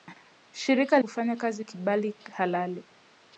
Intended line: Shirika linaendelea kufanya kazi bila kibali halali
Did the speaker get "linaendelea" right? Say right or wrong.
wrong